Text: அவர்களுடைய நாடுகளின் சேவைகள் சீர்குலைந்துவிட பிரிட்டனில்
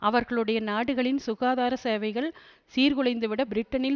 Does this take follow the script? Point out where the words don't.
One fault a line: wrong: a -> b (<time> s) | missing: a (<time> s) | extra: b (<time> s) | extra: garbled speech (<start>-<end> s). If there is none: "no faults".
extra: சுகாதார (1.2 s)